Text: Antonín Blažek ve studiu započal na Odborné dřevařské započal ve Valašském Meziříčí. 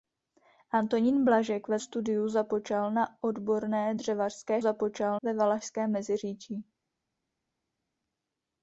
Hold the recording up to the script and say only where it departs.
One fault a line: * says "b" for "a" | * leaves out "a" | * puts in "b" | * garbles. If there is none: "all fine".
all fine